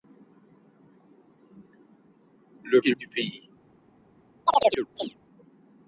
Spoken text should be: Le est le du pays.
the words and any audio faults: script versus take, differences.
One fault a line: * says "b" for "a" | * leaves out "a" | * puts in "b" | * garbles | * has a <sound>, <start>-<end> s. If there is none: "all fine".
* has a chirp, 4.5-5.2 s